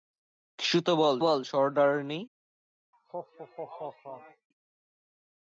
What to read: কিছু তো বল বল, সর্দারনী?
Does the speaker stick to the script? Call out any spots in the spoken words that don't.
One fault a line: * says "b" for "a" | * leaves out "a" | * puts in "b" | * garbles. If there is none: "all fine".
all fine